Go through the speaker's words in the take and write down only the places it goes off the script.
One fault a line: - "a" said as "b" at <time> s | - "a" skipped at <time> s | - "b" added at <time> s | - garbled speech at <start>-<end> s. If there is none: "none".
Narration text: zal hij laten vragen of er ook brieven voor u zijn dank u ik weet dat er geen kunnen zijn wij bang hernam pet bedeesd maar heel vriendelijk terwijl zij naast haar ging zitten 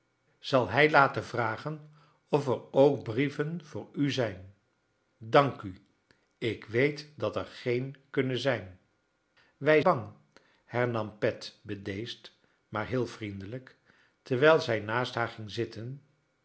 none